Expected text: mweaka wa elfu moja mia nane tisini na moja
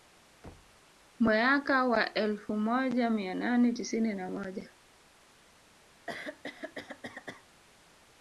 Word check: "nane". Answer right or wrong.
right